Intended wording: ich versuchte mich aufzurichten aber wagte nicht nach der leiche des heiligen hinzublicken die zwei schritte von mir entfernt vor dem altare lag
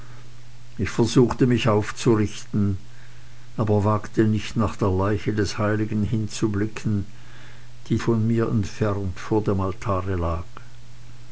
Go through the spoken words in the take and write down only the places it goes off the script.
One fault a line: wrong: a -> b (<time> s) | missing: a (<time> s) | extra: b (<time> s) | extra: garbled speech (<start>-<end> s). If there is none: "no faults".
missing: zwei schritte (8.0 s)